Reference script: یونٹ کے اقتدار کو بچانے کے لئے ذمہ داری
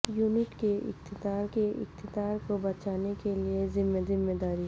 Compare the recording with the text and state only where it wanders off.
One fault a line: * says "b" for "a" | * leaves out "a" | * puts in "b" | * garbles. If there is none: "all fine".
* puts in "کے اقتدار"
* puts in "ذمہ"